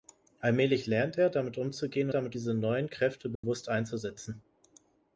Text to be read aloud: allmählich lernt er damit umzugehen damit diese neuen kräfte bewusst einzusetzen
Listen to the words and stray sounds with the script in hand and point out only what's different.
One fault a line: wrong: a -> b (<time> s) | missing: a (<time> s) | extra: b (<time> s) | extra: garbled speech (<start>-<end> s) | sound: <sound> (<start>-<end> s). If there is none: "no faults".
sound: dropout (3.4-3.4 s)